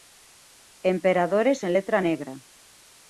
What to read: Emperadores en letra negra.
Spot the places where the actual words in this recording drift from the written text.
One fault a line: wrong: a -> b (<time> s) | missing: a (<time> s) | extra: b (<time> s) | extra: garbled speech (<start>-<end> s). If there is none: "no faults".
no faults